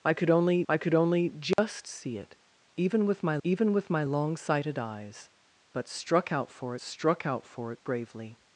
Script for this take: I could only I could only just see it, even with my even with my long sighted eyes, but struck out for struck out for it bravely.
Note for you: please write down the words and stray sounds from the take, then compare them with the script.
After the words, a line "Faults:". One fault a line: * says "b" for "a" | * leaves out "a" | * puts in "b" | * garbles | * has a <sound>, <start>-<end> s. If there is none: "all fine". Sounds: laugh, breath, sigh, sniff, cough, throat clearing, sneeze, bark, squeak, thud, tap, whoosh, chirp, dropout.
I could only I could only just see it, even with my even with my long sighted eyes, but struck out for struck out for it bravely.
Faults:
* has a dropout, 1.5-1.6 s